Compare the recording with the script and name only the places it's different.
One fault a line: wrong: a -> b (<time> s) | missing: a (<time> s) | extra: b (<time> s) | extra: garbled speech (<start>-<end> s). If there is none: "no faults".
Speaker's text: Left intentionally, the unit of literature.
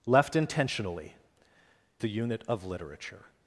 no faults